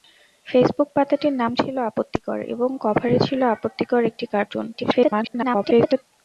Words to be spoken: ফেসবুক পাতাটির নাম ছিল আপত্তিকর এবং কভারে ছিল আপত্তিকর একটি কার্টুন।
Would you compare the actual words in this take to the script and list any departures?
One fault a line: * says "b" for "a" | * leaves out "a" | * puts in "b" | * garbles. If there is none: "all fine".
* garbles